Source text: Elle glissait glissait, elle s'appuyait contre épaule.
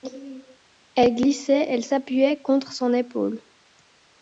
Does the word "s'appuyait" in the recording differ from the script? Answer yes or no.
no